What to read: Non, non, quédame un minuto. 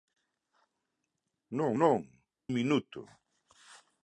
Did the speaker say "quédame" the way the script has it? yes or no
no